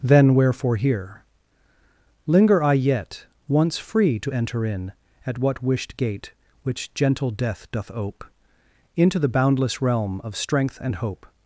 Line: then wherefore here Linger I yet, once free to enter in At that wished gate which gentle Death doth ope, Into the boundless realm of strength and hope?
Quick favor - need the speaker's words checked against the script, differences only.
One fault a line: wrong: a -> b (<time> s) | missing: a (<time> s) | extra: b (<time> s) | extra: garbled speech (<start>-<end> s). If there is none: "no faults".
wrong: that -> what (5.4 s)